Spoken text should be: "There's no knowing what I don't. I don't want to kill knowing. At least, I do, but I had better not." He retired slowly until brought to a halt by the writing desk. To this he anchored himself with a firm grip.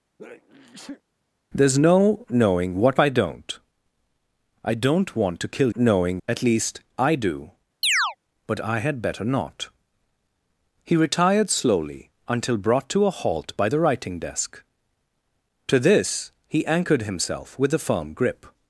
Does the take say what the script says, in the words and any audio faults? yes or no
no